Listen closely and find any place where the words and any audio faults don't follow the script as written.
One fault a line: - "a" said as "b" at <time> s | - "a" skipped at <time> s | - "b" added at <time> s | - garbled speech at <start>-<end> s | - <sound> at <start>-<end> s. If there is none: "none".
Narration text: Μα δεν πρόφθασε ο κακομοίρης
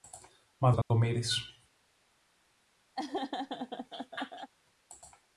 - "δεν πρόφθασε" skipped at 0.7 s
- dropout at 0.8-0.9 s
- laugh at 3.0-4.5 s